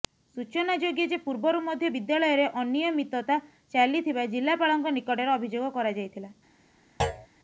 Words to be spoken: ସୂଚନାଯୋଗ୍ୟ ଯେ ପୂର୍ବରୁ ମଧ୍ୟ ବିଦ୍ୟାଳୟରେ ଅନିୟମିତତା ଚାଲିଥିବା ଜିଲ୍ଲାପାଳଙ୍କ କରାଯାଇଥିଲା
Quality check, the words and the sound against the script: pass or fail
fail